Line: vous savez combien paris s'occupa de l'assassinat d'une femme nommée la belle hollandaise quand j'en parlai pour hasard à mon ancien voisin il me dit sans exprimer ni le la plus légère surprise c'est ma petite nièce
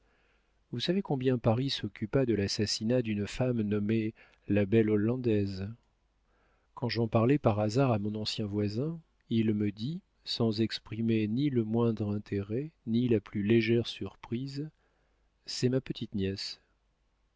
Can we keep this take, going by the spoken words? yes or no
no